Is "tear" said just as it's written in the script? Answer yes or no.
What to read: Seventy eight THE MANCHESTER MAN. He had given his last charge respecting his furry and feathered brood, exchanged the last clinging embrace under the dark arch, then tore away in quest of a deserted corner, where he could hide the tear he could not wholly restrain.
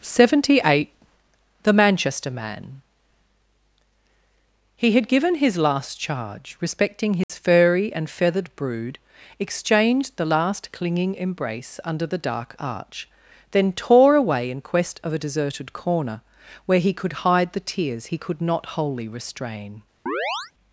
no